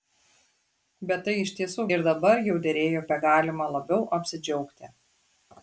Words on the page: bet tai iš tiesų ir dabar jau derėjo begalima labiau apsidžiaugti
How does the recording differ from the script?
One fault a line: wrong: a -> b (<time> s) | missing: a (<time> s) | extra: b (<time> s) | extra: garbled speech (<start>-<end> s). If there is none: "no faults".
no faults